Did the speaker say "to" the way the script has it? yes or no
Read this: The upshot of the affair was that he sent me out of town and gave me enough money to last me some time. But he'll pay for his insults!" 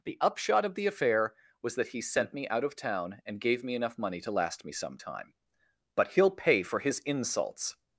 yes